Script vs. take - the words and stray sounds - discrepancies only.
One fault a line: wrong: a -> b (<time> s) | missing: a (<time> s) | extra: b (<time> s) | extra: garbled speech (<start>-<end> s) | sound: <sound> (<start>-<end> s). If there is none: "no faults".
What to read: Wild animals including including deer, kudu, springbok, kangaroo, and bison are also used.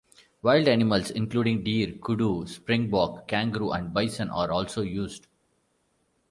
missing: including (1.7 s)